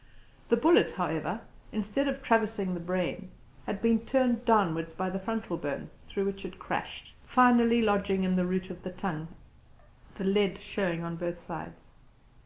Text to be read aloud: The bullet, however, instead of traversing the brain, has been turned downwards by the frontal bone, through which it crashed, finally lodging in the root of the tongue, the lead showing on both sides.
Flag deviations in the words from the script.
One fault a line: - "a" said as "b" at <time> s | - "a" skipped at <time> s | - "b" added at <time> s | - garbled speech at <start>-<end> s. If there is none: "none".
- "has" said as "had" at 3.7 s